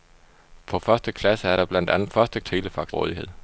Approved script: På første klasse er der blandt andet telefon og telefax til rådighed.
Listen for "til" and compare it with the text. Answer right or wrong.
wrong